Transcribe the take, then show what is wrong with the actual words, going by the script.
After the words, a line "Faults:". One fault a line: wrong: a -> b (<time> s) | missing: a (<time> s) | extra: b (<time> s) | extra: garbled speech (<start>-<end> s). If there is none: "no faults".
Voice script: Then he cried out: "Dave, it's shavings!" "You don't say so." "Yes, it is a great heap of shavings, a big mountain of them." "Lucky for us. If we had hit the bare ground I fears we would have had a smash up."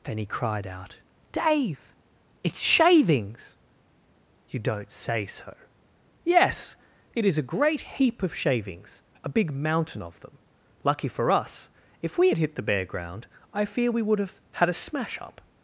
Then he cried out: "Dave, it's shavings!" "You don't say so." "Yes, it is a great heap of shavings, a big mountain of them." "Lucky for us. If we had hit the bare ground I fear we would have had a smash up."
Faults:
wrong: fears -> fear (13.7 s)